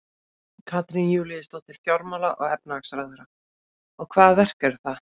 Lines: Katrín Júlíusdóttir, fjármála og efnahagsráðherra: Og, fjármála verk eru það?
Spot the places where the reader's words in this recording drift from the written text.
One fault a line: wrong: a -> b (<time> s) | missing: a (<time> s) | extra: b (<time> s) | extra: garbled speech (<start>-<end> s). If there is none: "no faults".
wrong: fjármála -> hvaða (4.1 s)